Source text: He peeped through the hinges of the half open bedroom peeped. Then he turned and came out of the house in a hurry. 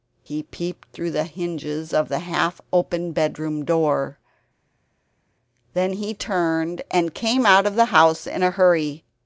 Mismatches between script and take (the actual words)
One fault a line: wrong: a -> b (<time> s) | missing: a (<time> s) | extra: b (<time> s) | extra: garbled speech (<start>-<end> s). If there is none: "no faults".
wrong: peeped -> door (3.6 s)